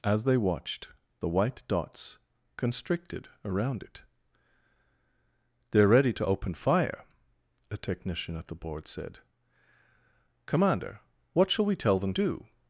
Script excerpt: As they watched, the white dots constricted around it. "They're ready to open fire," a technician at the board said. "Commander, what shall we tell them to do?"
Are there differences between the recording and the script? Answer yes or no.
yes